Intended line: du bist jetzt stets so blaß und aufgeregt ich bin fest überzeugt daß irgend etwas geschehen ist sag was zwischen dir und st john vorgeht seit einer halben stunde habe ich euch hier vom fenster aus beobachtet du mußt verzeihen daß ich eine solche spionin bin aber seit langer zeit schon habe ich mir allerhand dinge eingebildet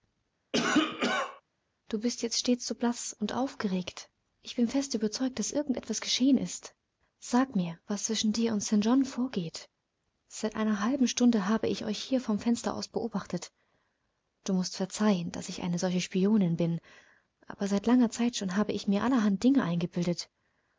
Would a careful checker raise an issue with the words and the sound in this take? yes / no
yes